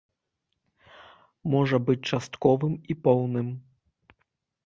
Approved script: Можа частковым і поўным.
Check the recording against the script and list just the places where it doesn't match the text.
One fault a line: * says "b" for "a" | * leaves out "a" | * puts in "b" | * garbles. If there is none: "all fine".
* puts in "быць"